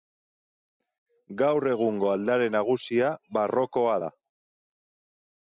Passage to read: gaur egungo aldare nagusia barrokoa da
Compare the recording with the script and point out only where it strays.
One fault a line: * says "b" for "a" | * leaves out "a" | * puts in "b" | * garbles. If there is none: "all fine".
all fine